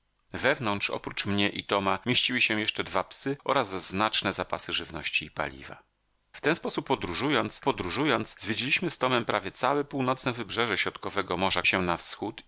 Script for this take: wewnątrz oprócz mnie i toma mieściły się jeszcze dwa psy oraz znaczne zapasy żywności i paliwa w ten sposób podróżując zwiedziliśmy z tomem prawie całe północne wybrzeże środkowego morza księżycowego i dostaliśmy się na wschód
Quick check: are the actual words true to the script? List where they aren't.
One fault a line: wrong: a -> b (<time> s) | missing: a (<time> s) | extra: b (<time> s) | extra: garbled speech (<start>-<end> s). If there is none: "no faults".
extra: podróżując (7.6 s)
missing: księżycowego i dostaliśmy (11.6 s)